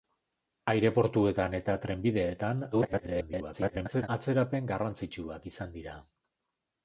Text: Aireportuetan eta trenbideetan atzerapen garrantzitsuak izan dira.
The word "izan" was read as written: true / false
true